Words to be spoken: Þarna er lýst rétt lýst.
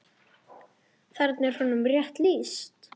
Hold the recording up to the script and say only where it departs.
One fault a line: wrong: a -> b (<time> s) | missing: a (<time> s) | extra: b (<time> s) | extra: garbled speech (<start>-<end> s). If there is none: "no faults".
wrong: lýst -> honum (1.6 s)